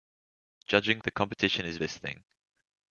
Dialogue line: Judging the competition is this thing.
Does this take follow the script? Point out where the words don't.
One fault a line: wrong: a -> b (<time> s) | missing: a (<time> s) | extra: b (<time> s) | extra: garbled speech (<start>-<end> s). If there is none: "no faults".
no faults